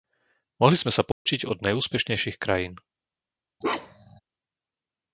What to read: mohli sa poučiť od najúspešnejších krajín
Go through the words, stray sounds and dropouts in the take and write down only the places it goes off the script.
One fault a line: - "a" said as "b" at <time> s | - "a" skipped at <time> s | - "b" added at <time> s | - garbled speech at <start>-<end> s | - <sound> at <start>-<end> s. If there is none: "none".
- "sme" added at 0.8 s
- dropout at 1.1-1.3 s
- bark at 3.6-4.2 s